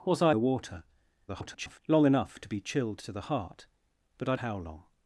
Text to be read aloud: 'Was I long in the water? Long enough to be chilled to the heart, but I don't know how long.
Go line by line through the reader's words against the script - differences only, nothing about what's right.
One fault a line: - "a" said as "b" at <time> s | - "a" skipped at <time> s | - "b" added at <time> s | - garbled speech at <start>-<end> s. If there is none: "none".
- "long in" skipped at 0.3 s
- garbled speech at 1.3-1.8 s
- "don't know" skipped at 4.3 s